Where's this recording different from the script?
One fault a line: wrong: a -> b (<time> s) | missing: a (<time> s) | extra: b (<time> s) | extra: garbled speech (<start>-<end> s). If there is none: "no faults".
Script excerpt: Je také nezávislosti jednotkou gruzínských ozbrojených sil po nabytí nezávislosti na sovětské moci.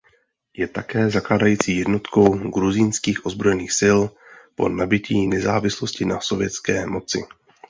wrong: nezávislosti -> zakládající (1.1 s)